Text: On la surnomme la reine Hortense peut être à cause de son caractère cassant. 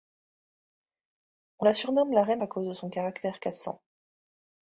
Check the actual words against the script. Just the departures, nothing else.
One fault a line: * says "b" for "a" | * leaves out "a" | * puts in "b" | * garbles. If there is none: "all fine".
* leaves out "Hortense peut être"